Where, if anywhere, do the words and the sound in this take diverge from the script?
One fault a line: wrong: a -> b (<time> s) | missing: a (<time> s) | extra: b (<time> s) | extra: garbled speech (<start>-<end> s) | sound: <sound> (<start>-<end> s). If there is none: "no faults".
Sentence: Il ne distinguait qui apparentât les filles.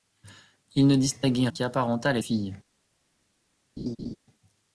sound: laugh (3.8-4.2 s)